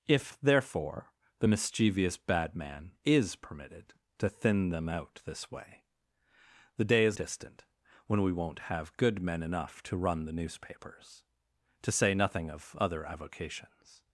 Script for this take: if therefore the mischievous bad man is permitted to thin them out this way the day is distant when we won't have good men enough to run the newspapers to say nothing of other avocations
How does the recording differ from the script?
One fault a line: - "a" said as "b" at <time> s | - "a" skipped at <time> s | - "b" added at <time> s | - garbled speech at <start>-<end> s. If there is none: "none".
none